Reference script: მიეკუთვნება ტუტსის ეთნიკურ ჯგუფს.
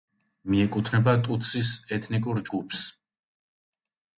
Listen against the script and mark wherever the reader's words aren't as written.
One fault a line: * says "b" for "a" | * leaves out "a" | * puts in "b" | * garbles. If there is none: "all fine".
all fine